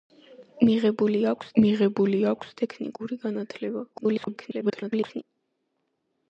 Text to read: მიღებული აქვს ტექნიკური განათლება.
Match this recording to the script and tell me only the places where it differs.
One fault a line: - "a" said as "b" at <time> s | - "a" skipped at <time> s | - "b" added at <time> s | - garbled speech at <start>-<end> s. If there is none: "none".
- "მიღებული აქვს" added at 1.6 s
- garbled speech at 3.9-5.2 s